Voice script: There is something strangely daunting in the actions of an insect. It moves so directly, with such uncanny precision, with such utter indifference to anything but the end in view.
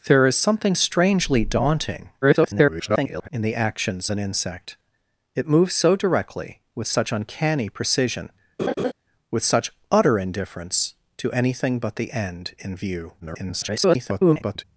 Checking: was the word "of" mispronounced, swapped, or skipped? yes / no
yes